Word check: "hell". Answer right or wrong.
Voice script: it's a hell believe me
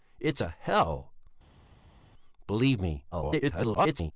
right